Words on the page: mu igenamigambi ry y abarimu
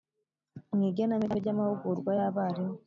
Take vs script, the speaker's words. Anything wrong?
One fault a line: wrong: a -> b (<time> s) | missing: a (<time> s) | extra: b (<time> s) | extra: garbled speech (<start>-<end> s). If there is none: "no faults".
extra: amahugurwa (1.5 s)